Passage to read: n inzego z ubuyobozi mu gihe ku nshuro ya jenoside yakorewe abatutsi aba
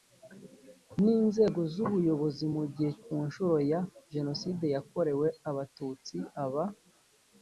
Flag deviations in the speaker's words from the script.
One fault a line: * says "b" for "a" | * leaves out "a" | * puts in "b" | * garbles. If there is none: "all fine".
all fine